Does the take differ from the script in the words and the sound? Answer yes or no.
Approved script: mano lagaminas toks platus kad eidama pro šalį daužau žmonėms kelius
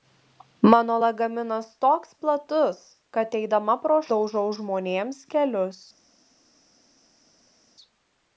yes